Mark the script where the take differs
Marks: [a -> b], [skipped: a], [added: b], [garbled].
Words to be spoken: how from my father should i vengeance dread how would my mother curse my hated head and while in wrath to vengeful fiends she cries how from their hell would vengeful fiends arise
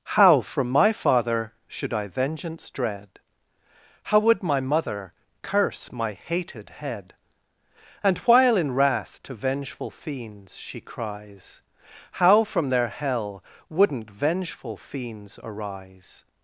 how from my father should i vengeance dread how would my mother curse my hated head and while in wrath to vengeful fiends she cries how from their hell [would -> wouldn't] vengeful fiends arise